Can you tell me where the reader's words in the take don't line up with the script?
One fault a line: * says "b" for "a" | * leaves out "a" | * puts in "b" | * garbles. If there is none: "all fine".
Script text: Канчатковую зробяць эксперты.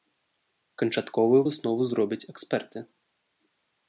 * puts in "выснову"